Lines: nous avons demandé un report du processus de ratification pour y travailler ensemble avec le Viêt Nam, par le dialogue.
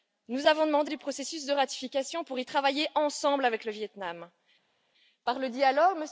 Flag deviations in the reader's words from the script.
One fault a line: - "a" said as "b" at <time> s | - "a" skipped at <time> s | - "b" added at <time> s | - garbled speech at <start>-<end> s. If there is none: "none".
- "un report" skipped at 0.9 s